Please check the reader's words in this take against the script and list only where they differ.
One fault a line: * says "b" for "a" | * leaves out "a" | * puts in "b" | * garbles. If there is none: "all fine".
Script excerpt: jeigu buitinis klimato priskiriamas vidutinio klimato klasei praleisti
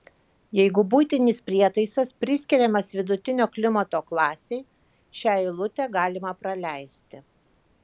* says "prietaisas" for "klimato"
* puts in "šią eilutę galima"